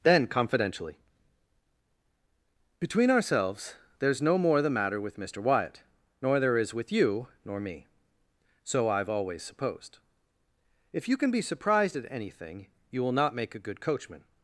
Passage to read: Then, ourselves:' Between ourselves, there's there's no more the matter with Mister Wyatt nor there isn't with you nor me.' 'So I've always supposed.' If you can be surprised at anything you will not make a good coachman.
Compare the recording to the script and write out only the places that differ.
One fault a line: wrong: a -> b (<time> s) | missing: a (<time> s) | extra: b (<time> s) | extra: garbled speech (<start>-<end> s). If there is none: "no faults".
wrong: ourselves -> confidentially (0.2 s)
missing: there's (4.2 s)
wrong: isn't -> is (6.6 s)